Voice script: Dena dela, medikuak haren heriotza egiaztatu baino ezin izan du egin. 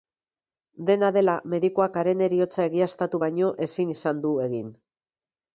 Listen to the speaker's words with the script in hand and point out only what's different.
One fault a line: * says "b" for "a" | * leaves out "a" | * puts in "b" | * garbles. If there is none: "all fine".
all fine